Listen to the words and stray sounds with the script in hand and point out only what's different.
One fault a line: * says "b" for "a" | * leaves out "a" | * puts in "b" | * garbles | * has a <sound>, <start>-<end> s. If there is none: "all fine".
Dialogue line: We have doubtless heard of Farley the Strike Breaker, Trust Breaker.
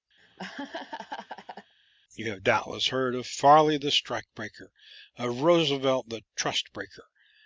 * has a laugh, 0.2-1.7 s
* says "You" for "We"
* puts in "of Roosevelt the"